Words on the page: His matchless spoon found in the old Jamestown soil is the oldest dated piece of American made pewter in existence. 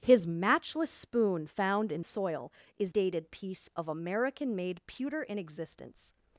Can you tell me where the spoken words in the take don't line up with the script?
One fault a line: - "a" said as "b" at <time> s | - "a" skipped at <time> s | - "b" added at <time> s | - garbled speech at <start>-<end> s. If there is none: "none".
- "the old Jamestown" skipped at 2.0 s
- "the oldest" skipped at 2.9 s